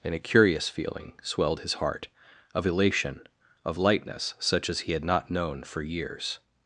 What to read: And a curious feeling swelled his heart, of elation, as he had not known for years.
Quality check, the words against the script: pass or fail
fail